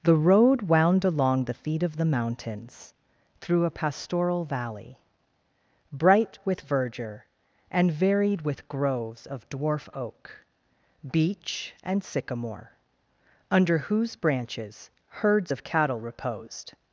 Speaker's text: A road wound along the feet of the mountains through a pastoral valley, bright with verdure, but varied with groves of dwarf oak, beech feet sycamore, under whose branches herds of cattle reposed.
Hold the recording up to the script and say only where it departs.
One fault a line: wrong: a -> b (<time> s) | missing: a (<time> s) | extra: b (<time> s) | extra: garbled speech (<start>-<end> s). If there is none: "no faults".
wrong: A -> The (0.0 s)
wrong: but -> and (7.7 s)
wrong: feet -> and (11.8 s)